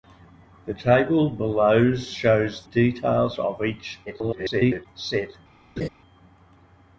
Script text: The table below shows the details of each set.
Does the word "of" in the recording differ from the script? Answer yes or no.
no